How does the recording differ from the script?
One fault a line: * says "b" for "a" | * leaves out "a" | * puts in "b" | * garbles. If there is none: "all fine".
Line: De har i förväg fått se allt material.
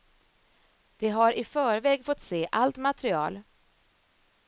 all fine